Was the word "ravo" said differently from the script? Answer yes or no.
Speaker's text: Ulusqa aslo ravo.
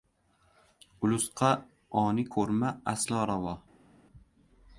no